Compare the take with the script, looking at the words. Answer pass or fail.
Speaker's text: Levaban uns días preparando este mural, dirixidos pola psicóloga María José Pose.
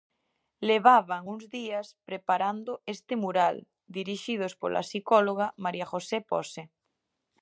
pass